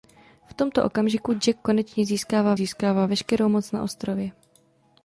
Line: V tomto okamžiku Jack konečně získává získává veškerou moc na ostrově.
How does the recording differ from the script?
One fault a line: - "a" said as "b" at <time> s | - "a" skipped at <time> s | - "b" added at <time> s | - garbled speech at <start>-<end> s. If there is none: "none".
none